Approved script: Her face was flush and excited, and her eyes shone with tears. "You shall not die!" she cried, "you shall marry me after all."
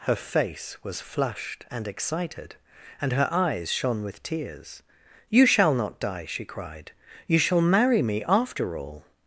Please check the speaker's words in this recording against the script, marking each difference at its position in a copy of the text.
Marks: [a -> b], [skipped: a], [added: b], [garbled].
Her face was [flush -> flushed] and excited, and her eyes shone with tears. "You shall not die!" she cried, "you shall marry me after all."